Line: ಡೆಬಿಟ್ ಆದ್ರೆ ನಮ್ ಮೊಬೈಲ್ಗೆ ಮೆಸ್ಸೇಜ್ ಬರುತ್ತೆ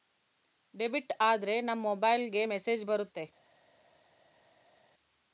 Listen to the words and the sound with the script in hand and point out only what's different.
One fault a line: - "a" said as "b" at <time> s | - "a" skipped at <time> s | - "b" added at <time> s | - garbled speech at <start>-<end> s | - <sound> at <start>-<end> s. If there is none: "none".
none